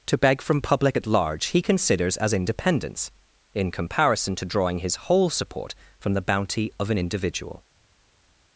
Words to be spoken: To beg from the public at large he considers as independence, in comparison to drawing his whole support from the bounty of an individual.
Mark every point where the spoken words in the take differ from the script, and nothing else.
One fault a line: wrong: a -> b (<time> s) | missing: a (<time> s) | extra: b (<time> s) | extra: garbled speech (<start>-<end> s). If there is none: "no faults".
missing: the (0.6 s)